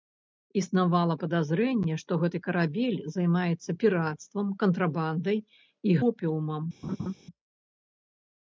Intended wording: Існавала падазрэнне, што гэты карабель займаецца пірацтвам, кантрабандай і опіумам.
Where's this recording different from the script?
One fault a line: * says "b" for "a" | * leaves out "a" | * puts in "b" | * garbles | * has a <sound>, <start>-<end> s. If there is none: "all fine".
* has a laugh, 6.8-7.1 s